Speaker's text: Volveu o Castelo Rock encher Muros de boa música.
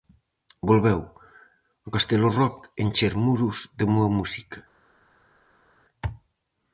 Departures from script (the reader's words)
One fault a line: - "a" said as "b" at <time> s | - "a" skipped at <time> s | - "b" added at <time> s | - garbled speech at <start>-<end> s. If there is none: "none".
none